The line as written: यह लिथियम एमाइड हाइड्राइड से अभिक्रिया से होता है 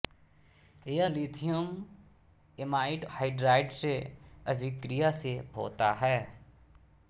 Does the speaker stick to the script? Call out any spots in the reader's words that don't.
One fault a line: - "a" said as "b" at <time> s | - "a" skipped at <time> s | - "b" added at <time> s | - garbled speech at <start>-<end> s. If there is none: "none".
none